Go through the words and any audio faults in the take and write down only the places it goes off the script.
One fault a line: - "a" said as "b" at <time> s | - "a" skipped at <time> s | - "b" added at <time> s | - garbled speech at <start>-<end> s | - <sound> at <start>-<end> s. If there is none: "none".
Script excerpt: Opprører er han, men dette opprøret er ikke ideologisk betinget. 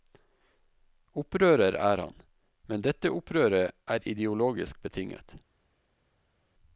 - "ikke" skipped at 4.1 s